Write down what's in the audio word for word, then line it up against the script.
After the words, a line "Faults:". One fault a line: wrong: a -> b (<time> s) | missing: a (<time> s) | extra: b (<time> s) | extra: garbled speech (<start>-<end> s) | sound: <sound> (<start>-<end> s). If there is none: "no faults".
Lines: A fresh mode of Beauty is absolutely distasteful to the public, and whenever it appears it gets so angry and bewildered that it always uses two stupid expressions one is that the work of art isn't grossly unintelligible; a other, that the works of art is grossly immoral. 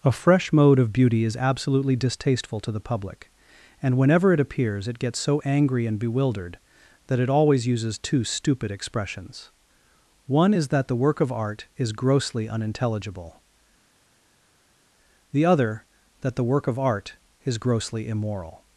A fresh mode of Beauty is absolutely distasteful to the public, and whenever it appears it gets so angry and bewildered that it always uses two stupid expressions one is that the work of art is grossly unintelligible; the other, that the work of art is grossly immoral.
Faults:
wrong: isn't -> is (11.8 s)
wrong: a -> the (15.3 s)
wrong: works -> work (16.4 s)